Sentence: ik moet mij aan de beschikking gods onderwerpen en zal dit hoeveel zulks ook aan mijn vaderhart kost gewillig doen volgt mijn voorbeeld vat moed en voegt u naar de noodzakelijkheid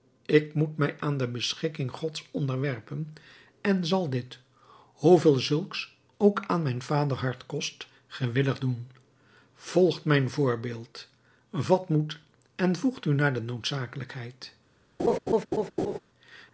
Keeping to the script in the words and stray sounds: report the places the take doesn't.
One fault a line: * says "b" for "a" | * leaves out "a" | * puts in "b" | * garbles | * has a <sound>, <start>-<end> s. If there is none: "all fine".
* has a laugh, 15.0-16.0 s